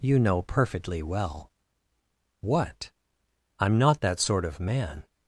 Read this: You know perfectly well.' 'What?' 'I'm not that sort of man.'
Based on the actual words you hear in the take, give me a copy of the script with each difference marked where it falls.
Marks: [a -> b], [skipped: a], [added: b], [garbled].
You know perfectly well.' 'What?' 'I'm not that sort of man.'